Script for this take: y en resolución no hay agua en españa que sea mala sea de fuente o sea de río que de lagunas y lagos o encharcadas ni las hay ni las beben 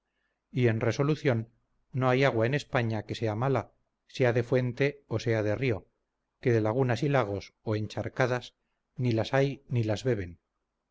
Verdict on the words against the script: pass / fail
pass